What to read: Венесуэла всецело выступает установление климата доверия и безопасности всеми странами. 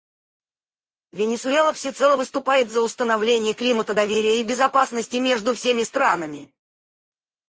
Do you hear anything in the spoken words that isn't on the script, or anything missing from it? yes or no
yes